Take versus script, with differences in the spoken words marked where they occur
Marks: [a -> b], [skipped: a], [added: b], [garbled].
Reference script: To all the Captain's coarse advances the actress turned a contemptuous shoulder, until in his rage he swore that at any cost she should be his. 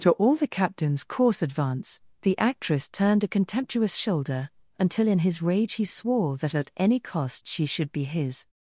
To all the Captain's coarse [advances -> advance] the actress turned a contemptuous shoulder, until in his rage he swore that at any cost she should be his.